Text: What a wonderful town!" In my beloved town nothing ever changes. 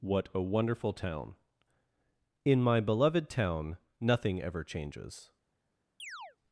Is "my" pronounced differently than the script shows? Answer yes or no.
no